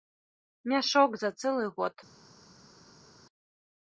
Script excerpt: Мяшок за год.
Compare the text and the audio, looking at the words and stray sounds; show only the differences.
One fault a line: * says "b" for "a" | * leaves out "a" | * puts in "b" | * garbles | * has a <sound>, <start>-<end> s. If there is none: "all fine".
* puts in "цэлы"